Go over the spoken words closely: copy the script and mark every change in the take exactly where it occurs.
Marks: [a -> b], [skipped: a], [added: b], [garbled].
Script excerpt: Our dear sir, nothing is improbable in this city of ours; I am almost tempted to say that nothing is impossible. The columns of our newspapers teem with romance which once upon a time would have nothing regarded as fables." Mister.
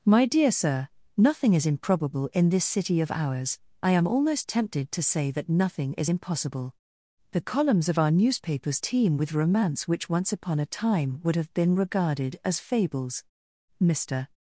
[Our -> My] dear sir, nothing is improbable in this city of ours; I am almost tempted to say that nothing is impossible. The columns of our newspapers teem with romance which once upon a time would have [nothing -> been] regarded as fables." Mister.